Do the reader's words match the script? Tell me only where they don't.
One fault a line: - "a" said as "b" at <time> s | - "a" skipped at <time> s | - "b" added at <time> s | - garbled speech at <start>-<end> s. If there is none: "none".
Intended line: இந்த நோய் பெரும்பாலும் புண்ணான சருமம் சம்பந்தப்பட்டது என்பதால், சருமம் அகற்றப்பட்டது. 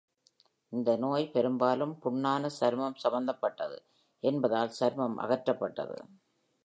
none